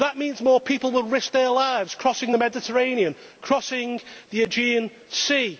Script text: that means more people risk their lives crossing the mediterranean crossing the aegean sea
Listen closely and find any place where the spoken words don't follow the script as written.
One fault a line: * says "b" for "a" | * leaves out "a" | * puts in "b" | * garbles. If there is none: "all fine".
* puts in "will"